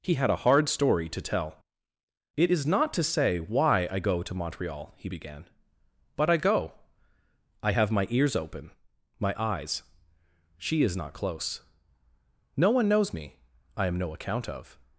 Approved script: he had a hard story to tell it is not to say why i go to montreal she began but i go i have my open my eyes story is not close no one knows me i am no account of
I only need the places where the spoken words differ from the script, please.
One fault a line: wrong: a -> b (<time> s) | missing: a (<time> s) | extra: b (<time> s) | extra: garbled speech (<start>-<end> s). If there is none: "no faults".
wrong: she -> he (5.0 s)
extra: ears (8.1 s)
wrong: story -> she (10.6 s)